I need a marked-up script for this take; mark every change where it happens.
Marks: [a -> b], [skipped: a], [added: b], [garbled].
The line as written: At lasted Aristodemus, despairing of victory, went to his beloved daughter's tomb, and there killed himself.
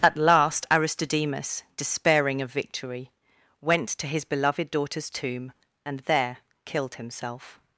At [lasted -> last] Aristodemus, despairing of victory, went to his beloved daughter's tomb, and there killed himself.